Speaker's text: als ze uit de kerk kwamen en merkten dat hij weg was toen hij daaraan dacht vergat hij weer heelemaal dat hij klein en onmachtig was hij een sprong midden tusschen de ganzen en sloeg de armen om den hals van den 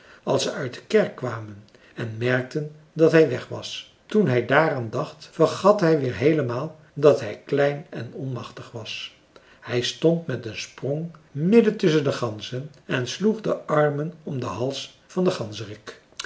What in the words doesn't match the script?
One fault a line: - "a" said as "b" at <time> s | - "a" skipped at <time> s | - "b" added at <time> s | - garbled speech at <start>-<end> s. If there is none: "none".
- "stond met" added at 9.8 s